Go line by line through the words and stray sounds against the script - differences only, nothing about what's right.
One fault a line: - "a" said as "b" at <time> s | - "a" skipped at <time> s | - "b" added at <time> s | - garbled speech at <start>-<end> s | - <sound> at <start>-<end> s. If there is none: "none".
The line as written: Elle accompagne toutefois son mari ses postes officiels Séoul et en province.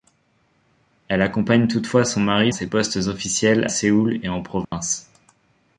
- dropout at 4.6-4.7 s